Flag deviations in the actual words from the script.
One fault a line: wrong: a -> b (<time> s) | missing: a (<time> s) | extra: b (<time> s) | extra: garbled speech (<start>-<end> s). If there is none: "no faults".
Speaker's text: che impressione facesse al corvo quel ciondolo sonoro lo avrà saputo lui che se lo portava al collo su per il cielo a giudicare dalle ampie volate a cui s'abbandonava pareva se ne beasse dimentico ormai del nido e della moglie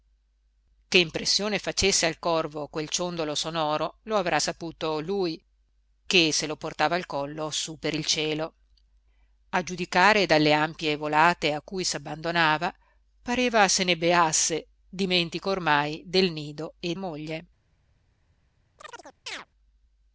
missing: della (17.0 s)